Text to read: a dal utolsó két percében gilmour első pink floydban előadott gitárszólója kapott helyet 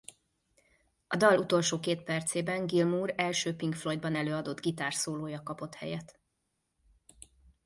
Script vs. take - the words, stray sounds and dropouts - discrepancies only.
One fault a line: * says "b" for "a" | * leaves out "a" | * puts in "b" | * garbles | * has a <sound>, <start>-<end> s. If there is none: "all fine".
all fine